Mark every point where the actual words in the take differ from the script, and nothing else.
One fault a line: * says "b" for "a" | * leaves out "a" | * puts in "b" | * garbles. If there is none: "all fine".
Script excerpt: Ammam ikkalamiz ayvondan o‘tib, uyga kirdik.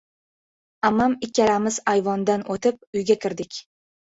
all fine